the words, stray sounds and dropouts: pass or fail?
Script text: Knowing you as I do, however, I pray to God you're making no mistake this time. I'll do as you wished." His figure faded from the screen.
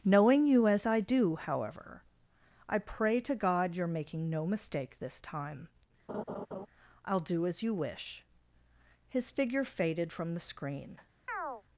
fail